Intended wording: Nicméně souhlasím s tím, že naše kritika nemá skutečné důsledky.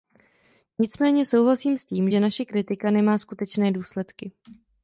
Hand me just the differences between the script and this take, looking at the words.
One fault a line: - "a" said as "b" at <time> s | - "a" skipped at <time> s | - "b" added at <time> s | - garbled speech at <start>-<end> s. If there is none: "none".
none